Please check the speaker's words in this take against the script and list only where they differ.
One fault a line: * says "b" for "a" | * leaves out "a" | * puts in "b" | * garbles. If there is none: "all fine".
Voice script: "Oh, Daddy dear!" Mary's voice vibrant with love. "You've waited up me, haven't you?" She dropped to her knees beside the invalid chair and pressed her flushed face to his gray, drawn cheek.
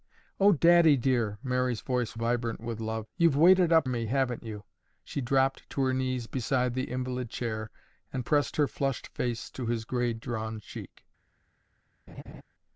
all fine